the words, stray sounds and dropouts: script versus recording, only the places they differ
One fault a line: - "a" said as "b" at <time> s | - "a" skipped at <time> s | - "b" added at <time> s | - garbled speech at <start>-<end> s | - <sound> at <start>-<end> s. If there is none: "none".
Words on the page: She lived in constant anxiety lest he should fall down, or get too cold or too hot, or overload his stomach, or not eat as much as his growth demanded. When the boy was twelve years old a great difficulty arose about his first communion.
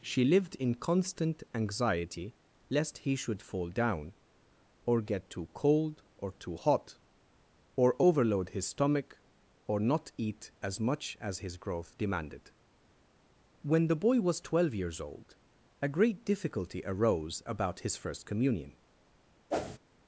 - whoosh at 19.5-19.8 s